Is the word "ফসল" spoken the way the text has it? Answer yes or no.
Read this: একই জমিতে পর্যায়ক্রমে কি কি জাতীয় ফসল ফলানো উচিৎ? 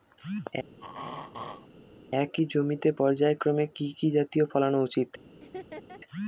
no